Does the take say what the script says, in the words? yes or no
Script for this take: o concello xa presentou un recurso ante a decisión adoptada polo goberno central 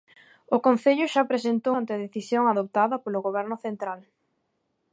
no